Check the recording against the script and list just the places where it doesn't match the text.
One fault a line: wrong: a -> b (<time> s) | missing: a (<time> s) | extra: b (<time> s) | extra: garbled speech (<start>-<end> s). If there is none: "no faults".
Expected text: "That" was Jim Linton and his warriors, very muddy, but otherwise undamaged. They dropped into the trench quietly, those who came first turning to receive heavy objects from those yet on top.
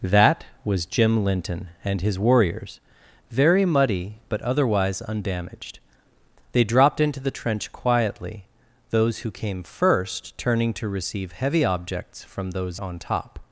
missing: yet (12.8 s)